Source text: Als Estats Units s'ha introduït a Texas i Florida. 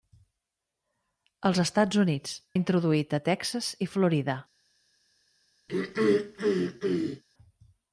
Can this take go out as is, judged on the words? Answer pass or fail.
fail